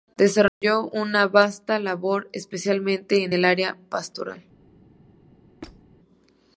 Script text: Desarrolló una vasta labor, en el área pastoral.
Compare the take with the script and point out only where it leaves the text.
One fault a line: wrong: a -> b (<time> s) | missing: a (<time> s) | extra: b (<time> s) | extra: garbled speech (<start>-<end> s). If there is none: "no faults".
extra: especialmente (2.3 s)